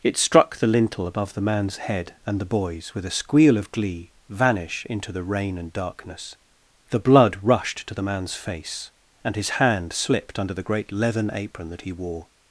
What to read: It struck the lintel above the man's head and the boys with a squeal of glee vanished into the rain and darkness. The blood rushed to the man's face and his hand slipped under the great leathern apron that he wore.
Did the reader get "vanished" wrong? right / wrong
wrong